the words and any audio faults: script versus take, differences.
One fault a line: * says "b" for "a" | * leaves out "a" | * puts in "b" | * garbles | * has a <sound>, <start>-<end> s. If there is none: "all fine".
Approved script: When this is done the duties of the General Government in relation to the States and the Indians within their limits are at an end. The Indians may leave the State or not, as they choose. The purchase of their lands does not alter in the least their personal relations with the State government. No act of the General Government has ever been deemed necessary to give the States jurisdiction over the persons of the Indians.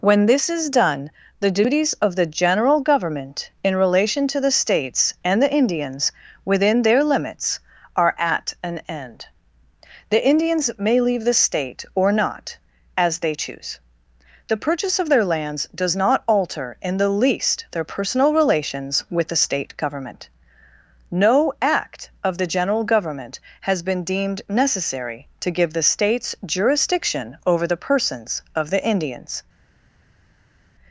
* leaves out "ever"